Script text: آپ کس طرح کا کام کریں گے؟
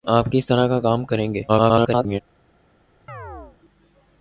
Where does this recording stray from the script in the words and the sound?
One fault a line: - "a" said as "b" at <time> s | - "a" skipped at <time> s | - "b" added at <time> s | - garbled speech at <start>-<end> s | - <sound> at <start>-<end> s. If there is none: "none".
- garbled speech at 1.5-2.2 s
- chirp at 3.1-3.6 s